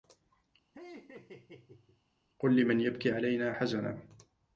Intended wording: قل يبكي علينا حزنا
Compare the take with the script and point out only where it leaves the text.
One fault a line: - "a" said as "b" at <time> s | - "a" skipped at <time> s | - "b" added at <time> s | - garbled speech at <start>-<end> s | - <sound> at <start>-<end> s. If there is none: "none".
- laugh at 0.7-2.0 s
- "لمن" added at 2.6 s